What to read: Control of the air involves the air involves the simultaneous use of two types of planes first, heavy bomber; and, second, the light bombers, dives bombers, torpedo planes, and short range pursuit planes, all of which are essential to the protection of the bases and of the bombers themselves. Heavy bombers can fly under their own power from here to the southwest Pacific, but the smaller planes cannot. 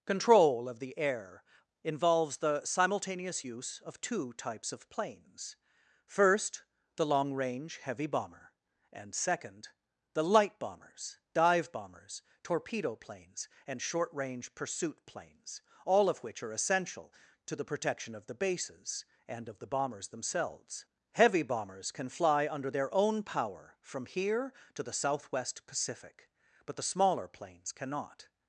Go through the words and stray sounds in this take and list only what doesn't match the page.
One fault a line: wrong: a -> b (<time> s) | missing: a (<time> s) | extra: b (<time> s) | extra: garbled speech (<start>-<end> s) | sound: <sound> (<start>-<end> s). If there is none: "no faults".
missing: air involves the (2.6 s)
extra: the long range (7.0 s)
wrong: dives -> dive (11.3 s)